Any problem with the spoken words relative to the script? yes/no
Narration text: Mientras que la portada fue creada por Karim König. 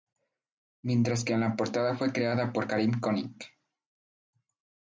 no